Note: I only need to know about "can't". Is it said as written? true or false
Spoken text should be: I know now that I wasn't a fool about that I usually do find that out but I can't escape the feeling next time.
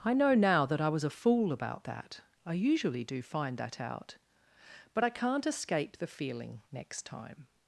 true